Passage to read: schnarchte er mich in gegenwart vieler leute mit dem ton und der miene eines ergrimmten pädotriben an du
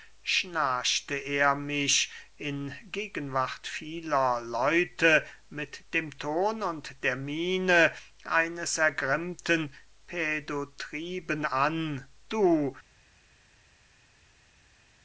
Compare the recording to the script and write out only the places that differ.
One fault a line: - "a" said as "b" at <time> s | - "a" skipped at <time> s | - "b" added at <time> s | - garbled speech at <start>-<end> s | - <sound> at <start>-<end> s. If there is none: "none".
none